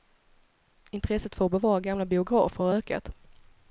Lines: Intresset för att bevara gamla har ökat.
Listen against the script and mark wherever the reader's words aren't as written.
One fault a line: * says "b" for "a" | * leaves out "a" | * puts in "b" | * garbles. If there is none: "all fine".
* puts in "biografer"